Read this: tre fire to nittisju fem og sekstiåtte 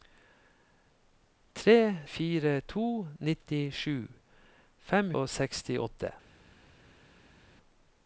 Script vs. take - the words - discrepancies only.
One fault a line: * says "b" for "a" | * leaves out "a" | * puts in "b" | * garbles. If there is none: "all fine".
all fine